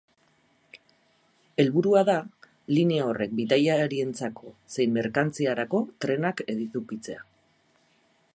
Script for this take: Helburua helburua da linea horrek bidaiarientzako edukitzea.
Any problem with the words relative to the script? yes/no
yes